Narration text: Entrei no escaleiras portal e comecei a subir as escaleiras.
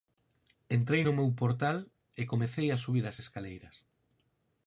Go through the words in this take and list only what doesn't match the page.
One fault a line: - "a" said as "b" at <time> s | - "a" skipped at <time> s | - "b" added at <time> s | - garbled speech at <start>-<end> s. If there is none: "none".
- "escaleiras" said as "meu" at 1.2 s